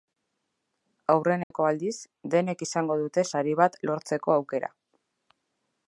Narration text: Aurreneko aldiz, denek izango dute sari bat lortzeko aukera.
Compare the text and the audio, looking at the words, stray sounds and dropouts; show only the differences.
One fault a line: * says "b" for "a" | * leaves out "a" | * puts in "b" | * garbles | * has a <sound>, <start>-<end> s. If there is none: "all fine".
* has a dropout, 1.4-1.5 s